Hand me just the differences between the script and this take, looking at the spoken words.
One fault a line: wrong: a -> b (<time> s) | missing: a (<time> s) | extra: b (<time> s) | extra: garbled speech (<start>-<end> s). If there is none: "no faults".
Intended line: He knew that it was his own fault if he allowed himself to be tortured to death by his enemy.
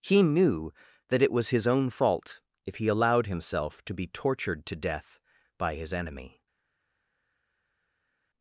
no faults